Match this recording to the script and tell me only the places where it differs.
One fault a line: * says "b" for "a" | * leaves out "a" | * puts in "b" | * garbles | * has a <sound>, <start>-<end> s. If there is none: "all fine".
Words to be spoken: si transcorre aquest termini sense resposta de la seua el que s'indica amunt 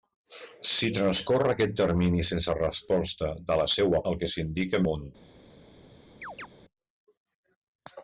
* has a chirp, 6.2-6.5 s